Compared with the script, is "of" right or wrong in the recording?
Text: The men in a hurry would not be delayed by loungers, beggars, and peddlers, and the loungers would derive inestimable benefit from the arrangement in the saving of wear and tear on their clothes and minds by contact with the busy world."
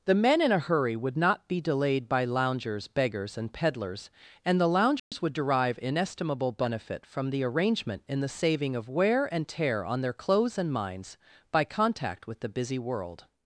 right